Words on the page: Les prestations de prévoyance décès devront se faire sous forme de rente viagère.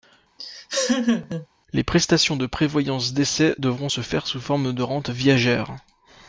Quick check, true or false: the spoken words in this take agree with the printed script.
true